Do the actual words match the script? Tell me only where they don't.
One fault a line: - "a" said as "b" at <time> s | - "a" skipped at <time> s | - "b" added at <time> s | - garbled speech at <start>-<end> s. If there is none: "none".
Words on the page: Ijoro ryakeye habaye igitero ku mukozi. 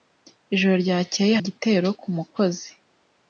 - "habaye" skipped at 1.4 s